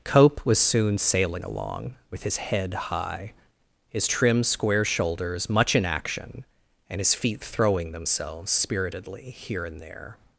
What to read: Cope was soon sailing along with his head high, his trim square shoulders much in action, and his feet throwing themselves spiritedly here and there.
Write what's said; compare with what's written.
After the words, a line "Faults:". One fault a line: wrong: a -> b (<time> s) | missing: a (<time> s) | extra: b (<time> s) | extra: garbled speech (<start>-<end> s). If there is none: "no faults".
Cope was soon sailing along with his head high, his trim square shoulders much in action, and his feet throwing themselves spiritedly here and there.
Faults:
no faults